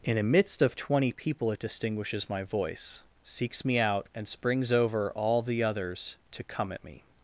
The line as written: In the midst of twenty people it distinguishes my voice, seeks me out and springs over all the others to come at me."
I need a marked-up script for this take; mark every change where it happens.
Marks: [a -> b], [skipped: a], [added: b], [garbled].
In [the -> a] midst of twenty people it distinguishes my voice, seeks me out and springs over all the others to come at me."